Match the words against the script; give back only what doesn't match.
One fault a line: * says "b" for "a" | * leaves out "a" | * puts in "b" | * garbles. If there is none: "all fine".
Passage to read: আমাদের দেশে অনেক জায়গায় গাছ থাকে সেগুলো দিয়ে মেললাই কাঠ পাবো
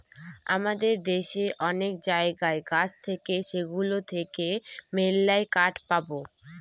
* says "থেকে" for "দিয়ে"